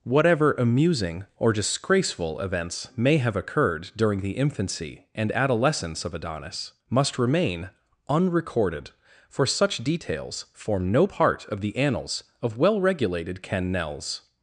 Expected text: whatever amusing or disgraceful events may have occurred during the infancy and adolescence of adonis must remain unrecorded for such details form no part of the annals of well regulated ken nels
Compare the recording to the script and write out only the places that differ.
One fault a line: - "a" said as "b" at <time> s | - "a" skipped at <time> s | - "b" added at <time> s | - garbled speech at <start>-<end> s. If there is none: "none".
none